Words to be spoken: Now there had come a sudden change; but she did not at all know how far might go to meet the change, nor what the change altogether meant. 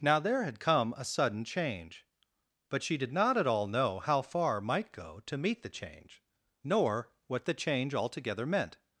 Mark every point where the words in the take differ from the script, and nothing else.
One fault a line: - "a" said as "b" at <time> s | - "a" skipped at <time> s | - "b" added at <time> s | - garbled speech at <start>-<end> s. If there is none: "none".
none